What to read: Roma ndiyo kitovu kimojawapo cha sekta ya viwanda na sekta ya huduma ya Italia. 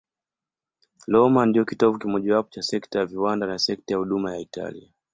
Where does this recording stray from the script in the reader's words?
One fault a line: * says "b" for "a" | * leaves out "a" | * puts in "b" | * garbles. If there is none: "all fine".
all fine